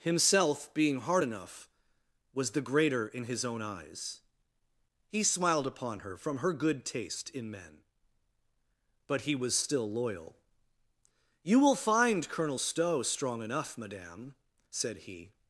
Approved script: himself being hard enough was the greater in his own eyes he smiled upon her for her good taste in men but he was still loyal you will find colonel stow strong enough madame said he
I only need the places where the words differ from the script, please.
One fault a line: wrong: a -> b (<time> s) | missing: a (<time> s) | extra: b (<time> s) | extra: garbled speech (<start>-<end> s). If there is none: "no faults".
wrong: for -> from (6.2 s)